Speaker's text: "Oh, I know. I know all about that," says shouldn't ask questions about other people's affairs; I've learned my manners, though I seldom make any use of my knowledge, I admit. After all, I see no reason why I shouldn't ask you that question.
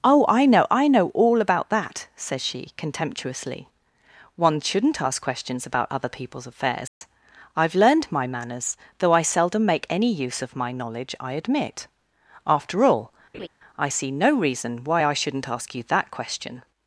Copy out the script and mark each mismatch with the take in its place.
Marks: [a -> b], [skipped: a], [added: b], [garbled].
"Oh, I know. I know all about that," says [added: she contemptuously One] shouldn't ask questions about other people's affairs; I've learned my manners, though I seldom make any use of my knowledge, I admit. After all, I see no reason why I shouldn't ask you that question.